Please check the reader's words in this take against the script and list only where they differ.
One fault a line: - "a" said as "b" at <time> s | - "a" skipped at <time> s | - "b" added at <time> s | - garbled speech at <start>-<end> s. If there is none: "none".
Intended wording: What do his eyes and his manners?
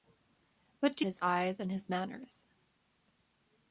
none